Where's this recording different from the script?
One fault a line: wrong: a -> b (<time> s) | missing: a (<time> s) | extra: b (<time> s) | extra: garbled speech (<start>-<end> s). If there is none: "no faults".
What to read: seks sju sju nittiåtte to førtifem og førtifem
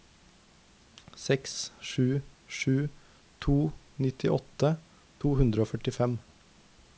extra: to (3.5 s)
wrong: førtifem -> hundre (5.4 s)